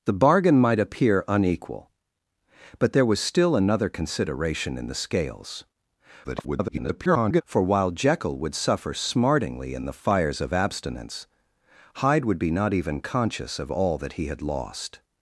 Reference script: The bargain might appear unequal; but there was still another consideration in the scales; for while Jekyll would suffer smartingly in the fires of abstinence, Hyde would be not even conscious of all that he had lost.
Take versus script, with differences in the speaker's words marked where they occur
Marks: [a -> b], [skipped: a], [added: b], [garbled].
The bargain might appear unequal; but there was still another consideration in the scales; [garbled] for while Jekyll would suffer smartingly in the fires of abstinence, Hyde would be not even conscious of all that he had lost.